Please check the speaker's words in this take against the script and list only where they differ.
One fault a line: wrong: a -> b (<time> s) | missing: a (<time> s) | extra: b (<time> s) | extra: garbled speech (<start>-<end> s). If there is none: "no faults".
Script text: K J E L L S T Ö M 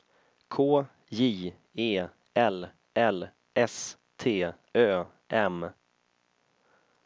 no faults